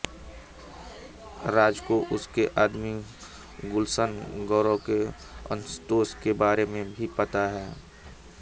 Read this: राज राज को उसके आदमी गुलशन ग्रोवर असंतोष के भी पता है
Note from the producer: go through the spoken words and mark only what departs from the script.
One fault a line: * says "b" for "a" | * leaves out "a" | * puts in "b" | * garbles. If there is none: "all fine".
* leaves out "राज"
* puts in "के"
* puts in "बारे में"